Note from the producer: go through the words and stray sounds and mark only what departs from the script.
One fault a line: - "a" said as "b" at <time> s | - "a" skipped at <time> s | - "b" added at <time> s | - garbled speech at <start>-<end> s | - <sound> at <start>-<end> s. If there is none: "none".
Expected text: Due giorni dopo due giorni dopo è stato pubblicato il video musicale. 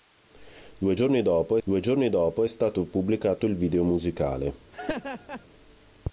- laugh at 4.7-5.5 s